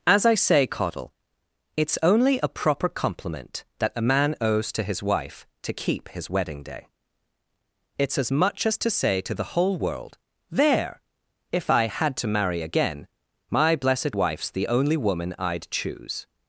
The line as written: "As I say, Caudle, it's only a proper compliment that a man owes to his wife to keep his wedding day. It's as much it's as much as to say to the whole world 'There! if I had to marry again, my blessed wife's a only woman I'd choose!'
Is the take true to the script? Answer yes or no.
no